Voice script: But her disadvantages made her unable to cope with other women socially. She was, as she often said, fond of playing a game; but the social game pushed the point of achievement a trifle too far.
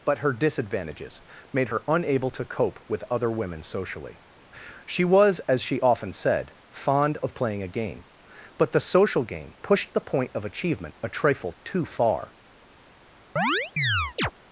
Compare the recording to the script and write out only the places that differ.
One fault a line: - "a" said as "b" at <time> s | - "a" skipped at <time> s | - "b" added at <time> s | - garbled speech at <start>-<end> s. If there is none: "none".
none